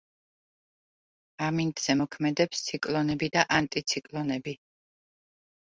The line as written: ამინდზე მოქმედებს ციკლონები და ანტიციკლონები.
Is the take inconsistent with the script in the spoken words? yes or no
no